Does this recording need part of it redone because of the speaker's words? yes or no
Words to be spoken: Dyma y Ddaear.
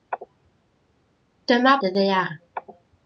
no